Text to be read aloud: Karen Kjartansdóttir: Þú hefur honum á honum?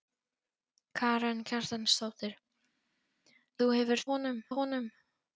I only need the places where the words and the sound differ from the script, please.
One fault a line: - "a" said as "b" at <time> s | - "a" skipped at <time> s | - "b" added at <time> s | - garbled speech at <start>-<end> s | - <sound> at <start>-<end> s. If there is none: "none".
none